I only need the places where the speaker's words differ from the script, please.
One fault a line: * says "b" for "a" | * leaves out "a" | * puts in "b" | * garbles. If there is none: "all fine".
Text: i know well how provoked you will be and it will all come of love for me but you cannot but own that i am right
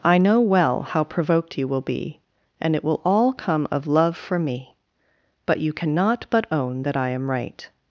all fine